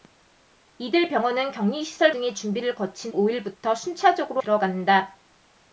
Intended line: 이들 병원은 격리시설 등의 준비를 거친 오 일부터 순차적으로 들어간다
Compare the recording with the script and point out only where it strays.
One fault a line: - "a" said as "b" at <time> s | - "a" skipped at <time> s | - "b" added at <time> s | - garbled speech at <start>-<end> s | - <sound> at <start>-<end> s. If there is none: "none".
none